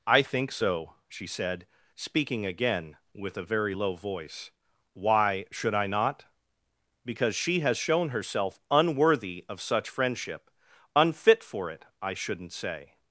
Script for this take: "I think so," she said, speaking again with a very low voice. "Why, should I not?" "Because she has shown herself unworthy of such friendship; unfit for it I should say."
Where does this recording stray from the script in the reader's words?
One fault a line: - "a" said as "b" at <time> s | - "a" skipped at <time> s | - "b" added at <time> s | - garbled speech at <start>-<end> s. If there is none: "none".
- "should" said as "shouldn't" at 12.1 s